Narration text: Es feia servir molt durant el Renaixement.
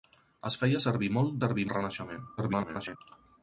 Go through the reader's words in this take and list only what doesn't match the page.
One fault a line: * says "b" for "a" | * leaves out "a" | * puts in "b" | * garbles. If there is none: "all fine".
* says "servir" for "durant"
* garbles